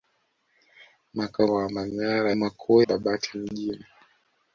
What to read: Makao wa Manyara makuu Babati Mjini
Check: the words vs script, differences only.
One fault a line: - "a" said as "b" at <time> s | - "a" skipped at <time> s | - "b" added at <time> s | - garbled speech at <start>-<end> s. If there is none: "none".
none